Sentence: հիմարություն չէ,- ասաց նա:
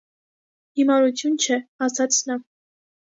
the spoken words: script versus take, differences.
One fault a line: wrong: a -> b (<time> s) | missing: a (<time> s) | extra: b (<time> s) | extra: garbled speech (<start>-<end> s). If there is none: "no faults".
no faults